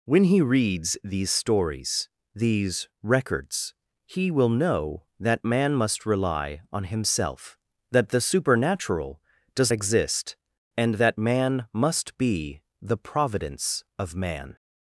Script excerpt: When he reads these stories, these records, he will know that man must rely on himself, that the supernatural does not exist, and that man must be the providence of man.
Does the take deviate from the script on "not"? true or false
true